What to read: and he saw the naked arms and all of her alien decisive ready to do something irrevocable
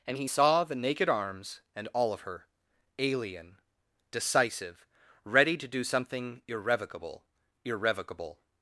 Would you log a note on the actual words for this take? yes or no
yes